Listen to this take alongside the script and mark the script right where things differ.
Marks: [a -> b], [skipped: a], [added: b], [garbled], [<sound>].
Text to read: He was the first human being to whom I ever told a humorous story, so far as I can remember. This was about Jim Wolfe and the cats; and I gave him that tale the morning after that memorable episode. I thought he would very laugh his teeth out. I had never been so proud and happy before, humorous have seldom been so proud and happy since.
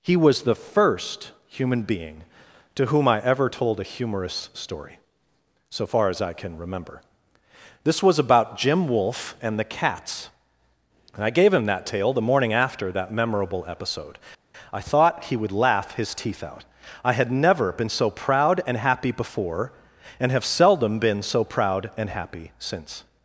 He was the first human being to whom I ever told a humorous story, so far as I can remember. This was about Jim Wolfe and the cats; and I gave him that tale the morning after that memorable episode. I thought he would [skipped: very] laugh his teeth out. I had never been so proud and happy before, [humorous -> and] have seldom been so proud and happy since.